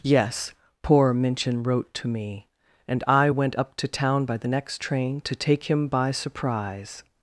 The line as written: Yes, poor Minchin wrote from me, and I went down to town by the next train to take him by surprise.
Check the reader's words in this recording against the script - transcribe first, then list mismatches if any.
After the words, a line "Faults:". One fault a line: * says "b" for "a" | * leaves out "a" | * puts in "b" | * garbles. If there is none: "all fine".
Yes, poor Minchin wrote to me, and I went up to town by the next train to take him by surprise.
Faults:
* says "to" for "from"
* says "up" for "down"